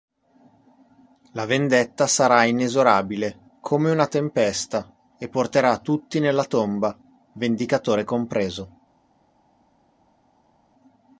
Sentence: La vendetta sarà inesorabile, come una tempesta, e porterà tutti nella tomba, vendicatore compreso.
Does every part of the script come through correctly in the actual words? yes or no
yes